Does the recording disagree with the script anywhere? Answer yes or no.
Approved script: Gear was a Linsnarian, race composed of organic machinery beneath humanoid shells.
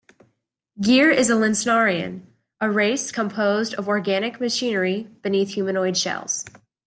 yes